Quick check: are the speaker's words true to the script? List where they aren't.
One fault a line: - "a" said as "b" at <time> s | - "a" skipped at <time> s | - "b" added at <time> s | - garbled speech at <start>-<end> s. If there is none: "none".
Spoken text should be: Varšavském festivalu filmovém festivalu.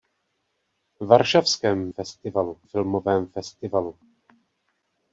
none